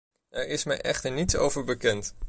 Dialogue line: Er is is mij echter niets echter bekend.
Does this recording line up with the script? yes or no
no